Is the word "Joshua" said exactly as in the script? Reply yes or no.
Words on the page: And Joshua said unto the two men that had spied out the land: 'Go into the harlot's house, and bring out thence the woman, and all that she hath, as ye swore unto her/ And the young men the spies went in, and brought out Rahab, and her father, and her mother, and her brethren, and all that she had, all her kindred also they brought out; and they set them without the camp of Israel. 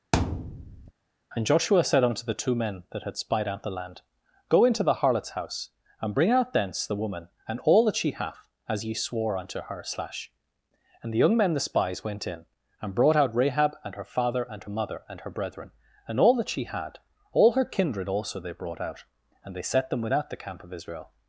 yes